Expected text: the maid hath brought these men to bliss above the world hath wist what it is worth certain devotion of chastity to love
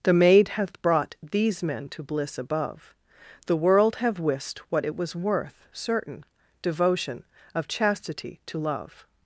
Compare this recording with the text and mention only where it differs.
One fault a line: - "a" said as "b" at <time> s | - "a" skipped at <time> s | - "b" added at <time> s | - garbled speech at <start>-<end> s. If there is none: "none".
- "hath" said as "have" at 4.0 s
- "is" said as "was" at 5.0 s